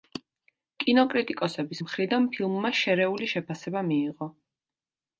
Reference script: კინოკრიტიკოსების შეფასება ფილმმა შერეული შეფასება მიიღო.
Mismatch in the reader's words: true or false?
true